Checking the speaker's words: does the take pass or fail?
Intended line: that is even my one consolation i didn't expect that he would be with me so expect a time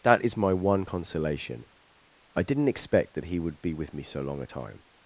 fail